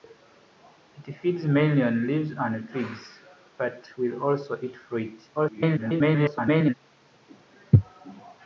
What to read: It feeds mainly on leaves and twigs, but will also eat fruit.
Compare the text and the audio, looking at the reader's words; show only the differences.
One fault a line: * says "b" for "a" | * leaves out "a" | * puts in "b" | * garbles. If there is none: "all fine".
* garbles